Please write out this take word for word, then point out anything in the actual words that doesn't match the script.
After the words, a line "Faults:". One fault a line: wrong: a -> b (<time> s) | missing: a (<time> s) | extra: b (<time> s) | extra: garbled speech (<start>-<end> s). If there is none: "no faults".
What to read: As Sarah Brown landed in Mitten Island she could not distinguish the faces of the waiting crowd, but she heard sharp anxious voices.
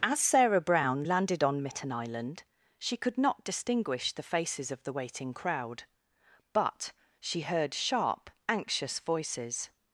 As Sarah Brown landed on Mitten Island she could not distinguish the faces of the waiting crowd, but she heard sharp anxious voices.
Faults:
wrong: in -> on (1.4 s)